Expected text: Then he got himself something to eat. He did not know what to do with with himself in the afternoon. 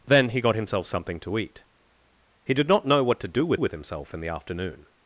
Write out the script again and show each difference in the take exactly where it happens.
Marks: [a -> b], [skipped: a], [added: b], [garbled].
Then he got himself something to eat. He did not know what to do with with himself in the afternoon.